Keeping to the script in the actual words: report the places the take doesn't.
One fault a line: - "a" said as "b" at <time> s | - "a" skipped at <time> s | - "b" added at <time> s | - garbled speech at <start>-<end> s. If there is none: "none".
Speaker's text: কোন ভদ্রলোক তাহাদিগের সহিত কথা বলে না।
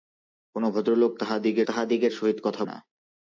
- "তাহাদিগের" added at 1.7 s
- "বলে" skipped at 2.6 s